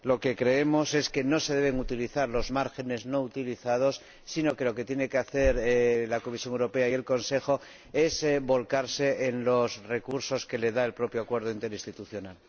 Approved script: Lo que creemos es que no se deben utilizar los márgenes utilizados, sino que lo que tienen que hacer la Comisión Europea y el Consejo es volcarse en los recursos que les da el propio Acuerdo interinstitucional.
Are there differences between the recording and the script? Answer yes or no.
yes